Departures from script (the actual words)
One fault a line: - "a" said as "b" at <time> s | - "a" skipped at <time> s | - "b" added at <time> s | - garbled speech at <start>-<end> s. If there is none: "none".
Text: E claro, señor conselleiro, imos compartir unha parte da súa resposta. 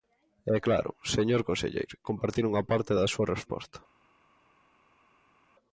- "imos" skipped at 1.9 s